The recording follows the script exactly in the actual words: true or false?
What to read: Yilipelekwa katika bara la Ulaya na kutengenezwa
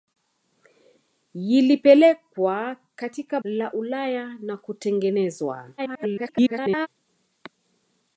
false